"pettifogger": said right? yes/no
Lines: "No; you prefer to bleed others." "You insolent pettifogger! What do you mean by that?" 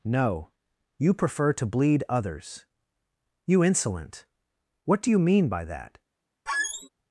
no